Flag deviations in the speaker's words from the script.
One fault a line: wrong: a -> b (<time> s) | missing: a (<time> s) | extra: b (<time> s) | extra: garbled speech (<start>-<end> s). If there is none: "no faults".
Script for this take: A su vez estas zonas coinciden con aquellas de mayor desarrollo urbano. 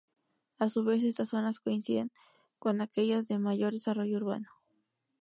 no faults